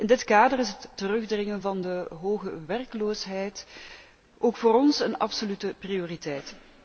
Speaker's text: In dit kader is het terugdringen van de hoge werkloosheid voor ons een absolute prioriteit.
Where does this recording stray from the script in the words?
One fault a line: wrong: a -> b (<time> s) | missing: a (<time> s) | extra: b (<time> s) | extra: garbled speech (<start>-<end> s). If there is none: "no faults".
extra: ook (4.4 s)